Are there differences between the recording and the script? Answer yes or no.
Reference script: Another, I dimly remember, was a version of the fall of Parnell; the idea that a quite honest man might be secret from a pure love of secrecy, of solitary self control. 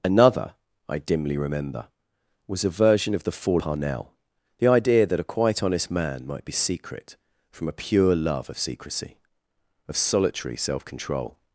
yes